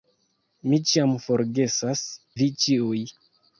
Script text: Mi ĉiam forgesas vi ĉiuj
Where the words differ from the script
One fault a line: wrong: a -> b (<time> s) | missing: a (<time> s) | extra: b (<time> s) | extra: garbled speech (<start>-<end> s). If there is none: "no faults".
no faults